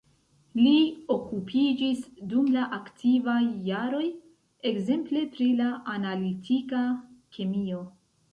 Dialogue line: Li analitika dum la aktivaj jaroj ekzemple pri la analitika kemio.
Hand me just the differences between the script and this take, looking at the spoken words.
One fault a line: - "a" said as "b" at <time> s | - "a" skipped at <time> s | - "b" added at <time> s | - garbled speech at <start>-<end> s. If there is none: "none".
- "analitika" said as "okupiĝis" at 1.1 s